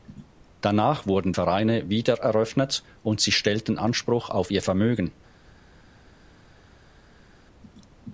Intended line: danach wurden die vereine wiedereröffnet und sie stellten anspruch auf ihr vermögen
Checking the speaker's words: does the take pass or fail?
fail